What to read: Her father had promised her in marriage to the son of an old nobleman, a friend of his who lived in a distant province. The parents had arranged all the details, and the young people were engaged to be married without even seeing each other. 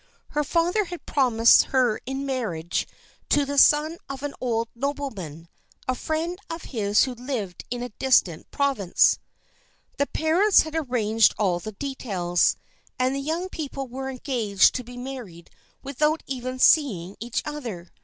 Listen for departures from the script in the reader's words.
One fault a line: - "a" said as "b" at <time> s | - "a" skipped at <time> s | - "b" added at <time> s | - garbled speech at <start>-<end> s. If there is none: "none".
none